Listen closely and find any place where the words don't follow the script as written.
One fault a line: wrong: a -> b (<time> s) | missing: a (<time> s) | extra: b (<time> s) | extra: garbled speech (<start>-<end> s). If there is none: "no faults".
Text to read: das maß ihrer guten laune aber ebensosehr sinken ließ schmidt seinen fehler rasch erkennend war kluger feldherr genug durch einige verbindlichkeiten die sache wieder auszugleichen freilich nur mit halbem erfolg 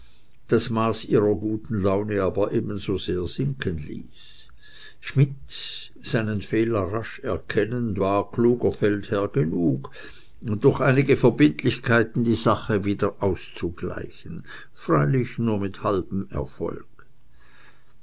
no faults